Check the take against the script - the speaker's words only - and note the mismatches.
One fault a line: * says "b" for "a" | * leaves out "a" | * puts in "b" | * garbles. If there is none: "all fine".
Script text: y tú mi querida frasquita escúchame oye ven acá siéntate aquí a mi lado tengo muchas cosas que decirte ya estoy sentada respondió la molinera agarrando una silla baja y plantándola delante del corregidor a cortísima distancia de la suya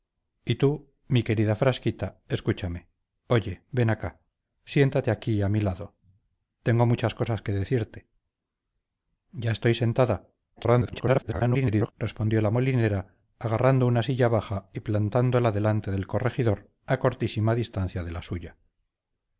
* garbles